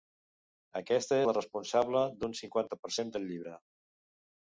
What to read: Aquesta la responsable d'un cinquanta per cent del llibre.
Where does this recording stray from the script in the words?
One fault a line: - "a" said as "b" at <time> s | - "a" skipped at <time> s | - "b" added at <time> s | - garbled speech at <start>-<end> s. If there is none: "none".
none